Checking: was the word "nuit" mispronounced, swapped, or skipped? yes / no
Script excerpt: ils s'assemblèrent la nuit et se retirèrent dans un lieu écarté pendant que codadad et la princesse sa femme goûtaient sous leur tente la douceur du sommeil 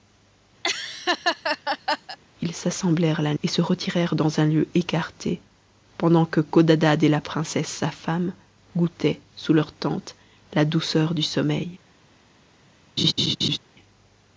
yes